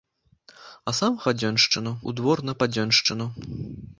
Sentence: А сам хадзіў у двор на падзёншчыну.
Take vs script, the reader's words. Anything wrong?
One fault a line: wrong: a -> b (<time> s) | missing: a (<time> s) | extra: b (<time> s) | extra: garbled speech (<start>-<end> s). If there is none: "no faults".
wrong: хадзіў -> падзёншчыну (1.3 s)